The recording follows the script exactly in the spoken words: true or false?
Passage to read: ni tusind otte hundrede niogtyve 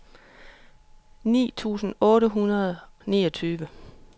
true